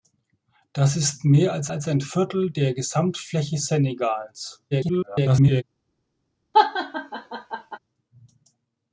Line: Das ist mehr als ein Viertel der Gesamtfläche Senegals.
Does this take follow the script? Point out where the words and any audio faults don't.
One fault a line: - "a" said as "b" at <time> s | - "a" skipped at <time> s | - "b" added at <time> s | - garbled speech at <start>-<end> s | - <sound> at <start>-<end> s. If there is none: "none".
- "als" added at 1.7 s
- garbled speech at 4.7-5.6 s
- laugh at 6.5-7.8 s